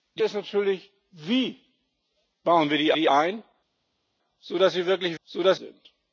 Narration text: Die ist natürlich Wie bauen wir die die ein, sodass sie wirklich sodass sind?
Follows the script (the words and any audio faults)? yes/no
yes